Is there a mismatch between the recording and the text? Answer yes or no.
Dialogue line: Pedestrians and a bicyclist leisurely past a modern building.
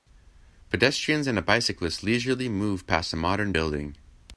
yes